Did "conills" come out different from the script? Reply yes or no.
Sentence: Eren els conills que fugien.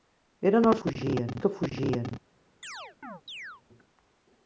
yes